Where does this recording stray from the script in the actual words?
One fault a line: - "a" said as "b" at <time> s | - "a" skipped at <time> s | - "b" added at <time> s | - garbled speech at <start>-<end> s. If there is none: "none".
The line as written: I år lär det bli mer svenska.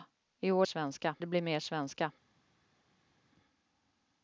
- "lär" said as "svenska" at 0.6 s